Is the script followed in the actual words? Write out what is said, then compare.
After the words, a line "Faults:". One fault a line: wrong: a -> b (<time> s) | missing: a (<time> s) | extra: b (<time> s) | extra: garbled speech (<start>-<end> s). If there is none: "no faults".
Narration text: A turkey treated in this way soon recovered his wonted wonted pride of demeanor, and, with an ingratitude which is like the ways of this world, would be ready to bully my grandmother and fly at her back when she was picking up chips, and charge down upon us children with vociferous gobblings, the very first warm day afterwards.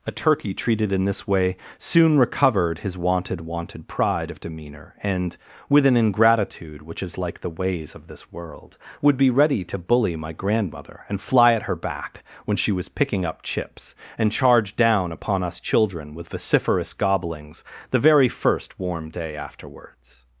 A turkey treated in this way soon recovered his wonted wonted pride of demeanor, and, with an ingratitude which is like the ways of this world, would be ready to bully my grandmother and fly at her back when she was picking up chips, and charge down upon us children with vociferous gobblings, the very first warm day afterwards.
Faults:
no faults